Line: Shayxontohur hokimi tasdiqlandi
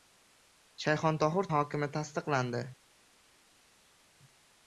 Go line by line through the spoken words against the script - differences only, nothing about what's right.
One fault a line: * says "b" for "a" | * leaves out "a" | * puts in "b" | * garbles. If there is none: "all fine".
all fine